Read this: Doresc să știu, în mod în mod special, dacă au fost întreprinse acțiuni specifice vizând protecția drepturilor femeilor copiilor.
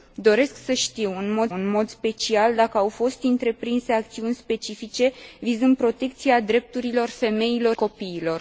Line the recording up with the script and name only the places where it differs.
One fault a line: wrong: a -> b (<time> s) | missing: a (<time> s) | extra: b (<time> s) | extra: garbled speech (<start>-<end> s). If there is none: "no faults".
no faults